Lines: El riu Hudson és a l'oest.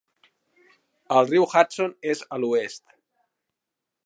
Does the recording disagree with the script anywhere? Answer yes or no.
no